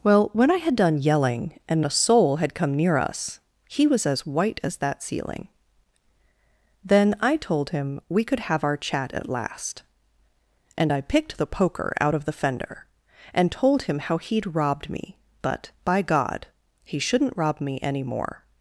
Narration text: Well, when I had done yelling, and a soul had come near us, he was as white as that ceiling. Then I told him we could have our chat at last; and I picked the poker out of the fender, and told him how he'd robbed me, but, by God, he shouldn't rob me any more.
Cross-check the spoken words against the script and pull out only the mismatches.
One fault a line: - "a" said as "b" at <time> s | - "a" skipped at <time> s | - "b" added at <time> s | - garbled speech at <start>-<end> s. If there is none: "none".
none